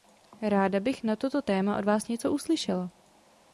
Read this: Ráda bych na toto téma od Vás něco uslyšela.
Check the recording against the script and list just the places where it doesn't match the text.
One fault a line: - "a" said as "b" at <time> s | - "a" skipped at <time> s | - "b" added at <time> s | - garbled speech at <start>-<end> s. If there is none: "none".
none